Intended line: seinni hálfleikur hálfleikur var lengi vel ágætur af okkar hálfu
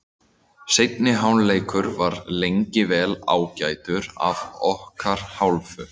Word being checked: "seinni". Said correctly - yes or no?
yes